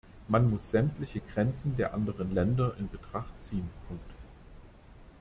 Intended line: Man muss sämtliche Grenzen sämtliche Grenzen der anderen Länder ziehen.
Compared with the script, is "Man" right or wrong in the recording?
right